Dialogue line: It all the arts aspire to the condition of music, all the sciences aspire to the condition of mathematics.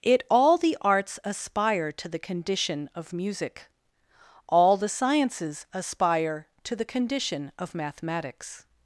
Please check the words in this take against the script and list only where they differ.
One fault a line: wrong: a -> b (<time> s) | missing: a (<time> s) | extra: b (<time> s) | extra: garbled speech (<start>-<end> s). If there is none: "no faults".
no faults